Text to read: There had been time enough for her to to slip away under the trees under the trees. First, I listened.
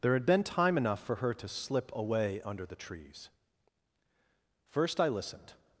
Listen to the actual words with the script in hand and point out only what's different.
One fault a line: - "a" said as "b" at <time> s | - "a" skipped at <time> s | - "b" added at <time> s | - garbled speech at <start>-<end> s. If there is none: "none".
- "to" skipped at 1.5 s
- "under the trees" skipped at 3.3 s